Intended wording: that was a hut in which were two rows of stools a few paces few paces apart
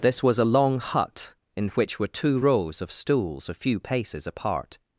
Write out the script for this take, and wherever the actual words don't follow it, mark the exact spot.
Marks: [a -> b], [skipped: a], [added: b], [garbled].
[that -> this] was a [added: long] hut in which were two rows of stools a few paces [skipped: few paces] apart